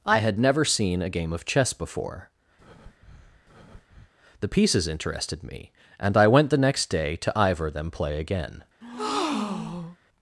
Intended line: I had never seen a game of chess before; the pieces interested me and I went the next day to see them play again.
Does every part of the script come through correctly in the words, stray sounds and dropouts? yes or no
no